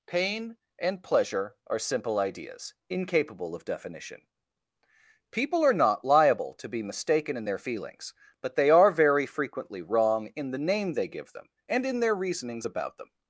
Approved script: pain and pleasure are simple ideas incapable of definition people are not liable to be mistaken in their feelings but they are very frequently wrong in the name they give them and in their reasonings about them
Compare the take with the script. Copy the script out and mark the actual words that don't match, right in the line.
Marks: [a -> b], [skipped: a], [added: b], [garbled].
pain and pleasure are simple ideas incapable of definition people are not liable to be mistaken in their feelings but they are very frequently wrong in the name they give them and in their reasonings about them